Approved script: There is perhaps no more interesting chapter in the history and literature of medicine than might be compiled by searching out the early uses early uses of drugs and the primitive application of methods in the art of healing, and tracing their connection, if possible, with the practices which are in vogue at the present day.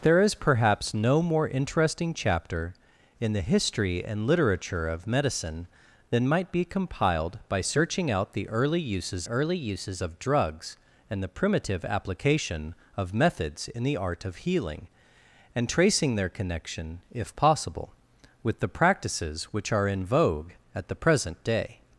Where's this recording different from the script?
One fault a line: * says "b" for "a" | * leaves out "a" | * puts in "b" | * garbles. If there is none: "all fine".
all fine